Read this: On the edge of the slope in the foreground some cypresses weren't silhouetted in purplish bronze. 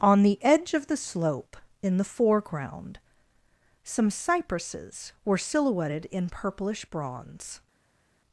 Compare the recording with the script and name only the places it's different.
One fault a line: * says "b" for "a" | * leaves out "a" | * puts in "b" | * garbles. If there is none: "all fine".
* says "were" for "weren't"